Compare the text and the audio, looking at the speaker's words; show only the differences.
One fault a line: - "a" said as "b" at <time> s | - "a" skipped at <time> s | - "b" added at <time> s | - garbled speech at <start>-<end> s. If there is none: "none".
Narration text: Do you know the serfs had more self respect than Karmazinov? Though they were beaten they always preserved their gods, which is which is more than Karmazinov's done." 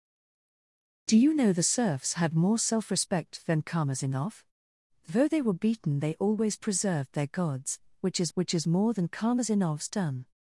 none